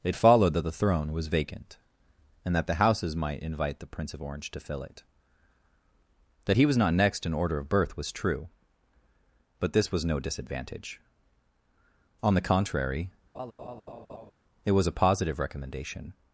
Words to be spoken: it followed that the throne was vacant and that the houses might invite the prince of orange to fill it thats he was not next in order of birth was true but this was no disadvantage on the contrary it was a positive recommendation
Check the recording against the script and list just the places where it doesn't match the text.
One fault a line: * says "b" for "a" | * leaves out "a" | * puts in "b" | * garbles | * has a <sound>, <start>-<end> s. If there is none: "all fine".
* says "that" for "thats"
* has a laugh, 13.3-14.3 s